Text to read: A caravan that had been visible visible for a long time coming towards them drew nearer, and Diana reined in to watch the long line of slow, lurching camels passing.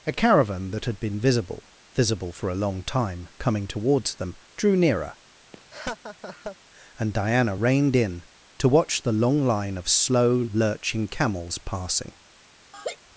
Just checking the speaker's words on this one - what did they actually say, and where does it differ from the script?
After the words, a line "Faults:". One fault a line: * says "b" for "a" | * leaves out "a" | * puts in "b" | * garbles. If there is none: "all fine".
A caravan that had been visible visible for a long time coming towards them drew nearer, and Diana reined in to watch the long line of slow, lurching camels passing.
Faults:
all fine